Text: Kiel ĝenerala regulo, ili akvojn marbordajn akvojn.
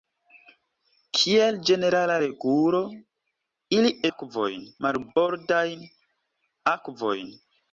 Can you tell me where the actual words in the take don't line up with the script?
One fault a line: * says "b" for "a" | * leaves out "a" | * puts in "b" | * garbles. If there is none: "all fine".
all fine